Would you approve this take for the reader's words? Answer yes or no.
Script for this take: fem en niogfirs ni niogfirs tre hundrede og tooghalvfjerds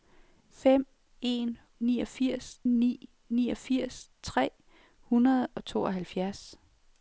yes